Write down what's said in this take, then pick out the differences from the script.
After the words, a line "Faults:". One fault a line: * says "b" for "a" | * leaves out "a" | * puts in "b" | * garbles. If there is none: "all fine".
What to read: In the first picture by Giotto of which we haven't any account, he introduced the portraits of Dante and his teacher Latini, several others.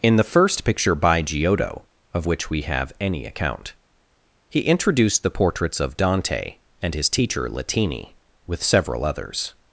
In the first picture by Giotto of which we have any account, he introduced the portraits of Dante and his teacher Latini, with several others.
Faults:
* says "have" for "haven't"
* puts in "with"